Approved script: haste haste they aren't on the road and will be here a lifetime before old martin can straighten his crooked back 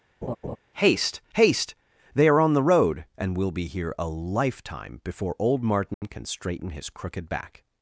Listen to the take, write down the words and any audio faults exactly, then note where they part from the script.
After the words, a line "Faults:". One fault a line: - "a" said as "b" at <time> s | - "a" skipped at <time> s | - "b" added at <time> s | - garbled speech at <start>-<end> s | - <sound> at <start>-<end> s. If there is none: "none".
haste haste they are on the road and will be here a lifetime before old martin can straighten his crooked back
Faults:
- laugh at 0.2-0.6 s
- "aren't" said as "are" at 2.3 s
- dropout at 5.9-6.0 s